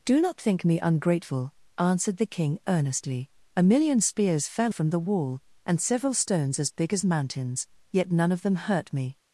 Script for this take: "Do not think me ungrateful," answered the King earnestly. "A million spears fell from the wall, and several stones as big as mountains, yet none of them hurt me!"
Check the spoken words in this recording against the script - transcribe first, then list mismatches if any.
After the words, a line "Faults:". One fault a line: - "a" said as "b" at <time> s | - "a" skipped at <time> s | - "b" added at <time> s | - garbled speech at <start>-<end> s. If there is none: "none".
"Do not think me ungrateful," answered the King earnestly. "A million spears fell from the wall, and several stones as big as mountains, yet none of them hurt me!"
Faults:
none